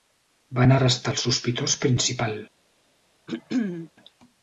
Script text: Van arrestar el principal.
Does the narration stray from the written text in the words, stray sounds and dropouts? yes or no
yes